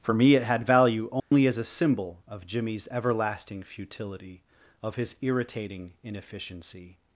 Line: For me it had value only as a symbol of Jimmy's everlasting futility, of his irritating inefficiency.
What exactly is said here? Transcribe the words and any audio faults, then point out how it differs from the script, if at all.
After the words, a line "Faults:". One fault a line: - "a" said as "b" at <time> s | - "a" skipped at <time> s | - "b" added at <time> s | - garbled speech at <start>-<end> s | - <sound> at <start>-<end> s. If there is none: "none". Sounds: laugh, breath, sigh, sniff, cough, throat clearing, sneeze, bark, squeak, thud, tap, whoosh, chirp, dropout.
For me it had value only as a symbol of Jimmy's everlasting futility, of his irritating inefficiency.
Faults:
- dropout at 1.2-1.3 s